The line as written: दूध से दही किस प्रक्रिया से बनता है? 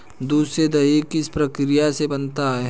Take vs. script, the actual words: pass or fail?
pass